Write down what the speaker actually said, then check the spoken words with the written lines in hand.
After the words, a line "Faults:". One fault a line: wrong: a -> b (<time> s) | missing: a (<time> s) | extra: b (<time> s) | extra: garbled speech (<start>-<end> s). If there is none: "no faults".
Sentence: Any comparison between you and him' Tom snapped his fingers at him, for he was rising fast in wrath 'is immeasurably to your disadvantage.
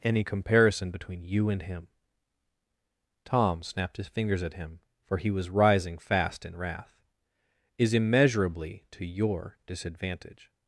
Any comparison between you and him' Tom snapped his fingers at him, for he was rising fast in wrath 'is immeasurably to your disadvantage.
Faults:
no faults